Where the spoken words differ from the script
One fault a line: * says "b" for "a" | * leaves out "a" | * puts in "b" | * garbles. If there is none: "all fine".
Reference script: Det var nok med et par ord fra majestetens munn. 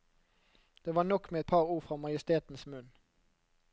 all fine